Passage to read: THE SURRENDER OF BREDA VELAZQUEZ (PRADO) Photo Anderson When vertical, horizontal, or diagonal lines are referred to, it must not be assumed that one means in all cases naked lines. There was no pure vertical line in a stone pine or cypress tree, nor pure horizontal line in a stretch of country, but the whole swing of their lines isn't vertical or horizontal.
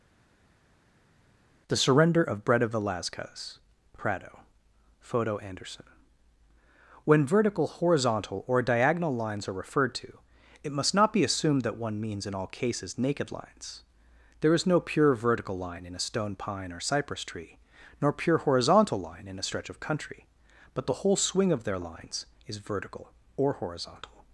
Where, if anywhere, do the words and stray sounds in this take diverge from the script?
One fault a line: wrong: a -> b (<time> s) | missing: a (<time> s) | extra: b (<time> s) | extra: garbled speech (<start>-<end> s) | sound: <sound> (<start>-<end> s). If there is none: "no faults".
wrong: was -> is (14.5 s)
wrong: isn't -> is (22.4 s)